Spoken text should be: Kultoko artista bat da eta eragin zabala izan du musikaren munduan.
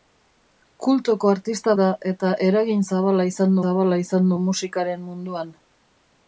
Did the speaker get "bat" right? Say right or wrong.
wrong